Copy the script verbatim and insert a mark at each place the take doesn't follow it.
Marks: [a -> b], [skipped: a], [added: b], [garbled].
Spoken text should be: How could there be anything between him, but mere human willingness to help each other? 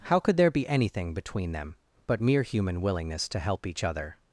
How could there be anything between [him, -> them] but mere human willingness to help each other?